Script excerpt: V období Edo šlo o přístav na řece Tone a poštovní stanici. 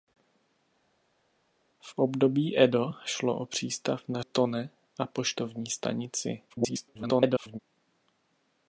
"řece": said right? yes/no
no